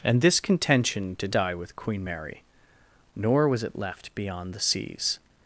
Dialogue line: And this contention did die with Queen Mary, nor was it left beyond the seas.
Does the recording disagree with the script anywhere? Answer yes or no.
no